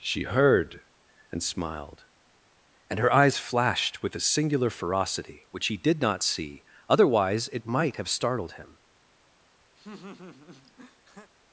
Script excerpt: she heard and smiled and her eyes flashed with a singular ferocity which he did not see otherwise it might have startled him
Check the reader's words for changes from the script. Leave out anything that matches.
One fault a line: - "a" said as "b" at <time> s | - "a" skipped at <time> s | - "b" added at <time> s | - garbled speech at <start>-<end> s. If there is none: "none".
none